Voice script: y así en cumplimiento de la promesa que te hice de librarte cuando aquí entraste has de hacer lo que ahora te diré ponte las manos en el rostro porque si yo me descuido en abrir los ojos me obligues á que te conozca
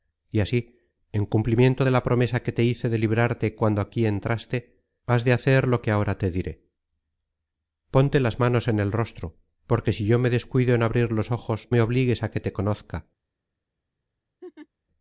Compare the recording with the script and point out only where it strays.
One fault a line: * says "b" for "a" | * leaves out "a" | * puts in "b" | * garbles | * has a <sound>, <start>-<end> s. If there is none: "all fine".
* has a laugh, 14.4-14.7 s